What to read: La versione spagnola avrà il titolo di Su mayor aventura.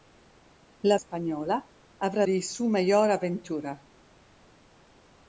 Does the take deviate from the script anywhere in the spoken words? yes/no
yes